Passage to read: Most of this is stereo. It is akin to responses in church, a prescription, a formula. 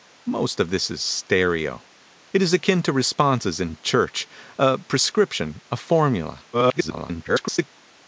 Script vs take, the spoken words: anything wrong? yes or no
yes